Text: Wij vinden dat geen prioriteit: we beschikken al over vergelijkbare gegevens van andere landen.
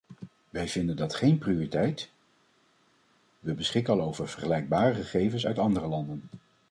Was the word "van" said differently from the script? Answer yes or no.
yes